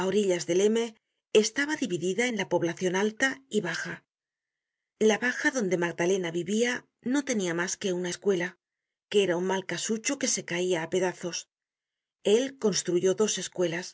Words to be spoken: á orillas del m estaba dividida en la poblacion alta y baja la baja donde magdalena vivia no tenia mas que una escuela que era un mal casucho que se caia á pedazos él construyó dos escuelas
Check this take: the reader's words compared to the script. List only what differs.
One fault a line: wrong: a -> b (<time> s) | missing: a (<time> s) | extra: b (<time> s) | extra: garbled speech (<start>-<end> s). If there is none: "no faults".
no faults